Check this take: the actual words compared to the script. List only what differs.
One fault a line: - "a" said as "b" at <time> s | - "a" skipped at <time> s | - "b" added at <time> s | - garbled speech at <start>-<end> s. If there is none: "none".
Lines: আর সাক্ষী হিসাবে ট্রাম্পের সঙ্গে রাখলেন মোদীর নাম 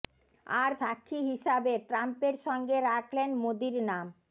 none